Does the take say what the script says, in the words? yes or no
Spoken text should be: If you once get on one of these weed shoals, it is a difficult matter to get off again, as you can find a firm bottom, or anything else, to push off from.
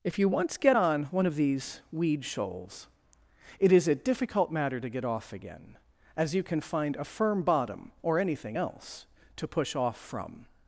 yes